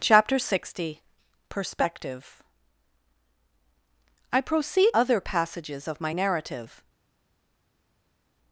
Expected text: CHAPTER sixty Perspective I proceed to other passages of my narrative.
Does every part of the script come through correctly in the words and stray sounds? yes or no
no